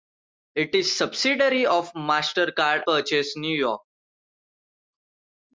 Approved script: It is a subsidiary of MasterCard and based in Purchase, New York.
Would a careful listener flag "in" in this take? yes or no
yes